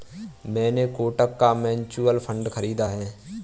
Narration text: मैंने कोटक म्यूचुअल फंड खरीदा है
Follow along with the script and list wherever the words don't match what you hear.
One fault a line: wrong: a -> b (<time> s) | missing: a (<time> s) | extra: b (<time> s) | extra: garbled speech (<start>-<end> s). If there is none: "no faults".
extra: का (1.4 s)